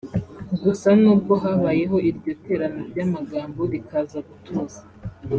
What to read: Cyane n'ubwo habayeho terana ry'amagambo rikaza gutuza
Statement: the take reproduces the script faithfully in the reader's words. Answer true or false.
false